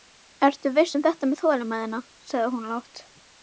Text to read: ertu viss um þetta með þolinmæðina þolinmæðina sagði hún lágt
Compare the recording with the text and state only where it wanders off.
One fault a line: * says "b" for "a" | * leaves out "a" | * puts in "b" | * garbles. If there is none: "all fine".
* leaves out "þolinmæðina"